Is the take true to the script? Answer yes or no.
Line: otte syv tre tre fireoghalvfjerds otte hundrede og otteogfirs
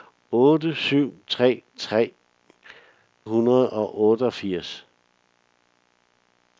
no